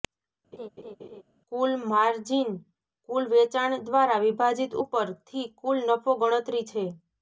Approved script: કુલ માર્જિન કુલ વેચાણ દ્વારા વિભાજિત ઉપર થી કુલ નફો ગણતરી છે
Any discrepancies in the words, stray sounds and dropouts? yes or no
yes